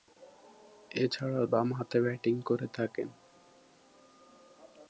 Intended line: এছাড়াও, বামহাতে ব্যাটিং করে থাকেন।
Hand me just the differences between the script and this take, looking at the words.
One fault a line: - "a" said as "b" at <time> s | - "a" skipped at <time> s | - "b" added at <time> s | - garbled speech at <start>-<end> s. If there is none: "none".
none